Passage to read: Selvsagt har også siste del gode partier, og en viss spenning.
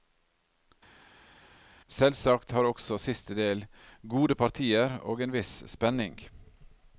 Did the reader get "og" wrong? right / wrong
right